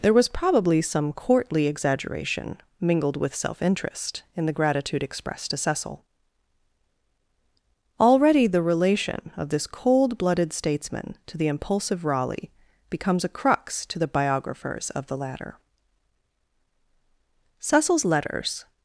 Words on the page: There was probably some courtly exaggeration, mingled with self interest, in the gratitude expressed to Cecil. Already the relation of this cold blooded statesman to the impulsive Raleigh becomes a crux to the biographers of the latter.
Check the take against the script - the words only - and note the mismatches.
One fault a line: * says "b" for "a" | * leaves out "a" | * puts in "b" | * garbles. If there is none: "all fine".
* puts in "Cecil's letters"